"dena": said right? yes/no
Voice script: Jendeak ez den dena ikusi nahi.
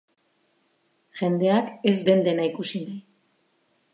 yes